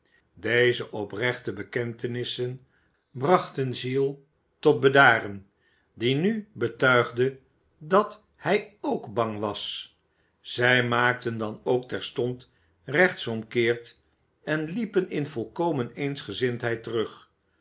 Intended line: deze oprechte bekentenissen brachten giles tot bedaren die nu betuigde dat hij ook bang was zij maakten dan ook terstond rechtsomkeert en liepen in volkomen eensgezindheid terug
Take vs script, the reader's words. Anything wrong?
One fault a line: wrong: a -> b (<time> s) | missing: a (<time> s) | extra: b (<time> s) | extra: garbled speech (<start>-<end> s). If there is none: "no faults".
no faults